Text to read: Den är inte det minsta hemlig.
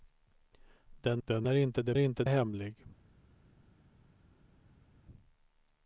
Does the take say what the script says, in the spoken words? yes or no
no